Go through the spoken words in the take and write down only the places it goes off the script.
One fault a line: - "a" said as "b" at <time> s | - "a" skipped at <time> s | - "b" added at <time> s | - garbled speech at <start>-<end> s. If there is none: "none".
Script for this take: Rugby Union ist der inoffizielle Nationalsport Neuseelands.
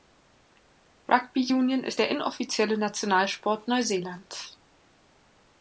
none